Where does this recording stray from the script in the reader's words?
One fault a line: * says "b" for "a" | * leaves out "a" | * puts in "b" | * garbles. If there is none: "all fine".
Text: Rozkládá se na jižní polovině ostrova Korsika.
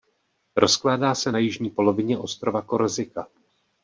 all fine